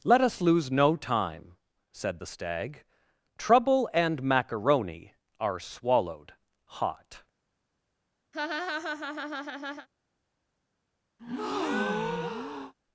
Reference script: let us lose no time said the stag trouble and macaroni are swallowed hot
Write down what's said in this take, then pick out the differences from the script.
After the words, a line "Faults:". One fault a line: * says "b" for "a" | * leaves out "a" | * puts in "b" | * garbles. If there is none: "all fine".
let us lose no time said the stag trouble and macaroni are swallowed hot
Faults:
all fine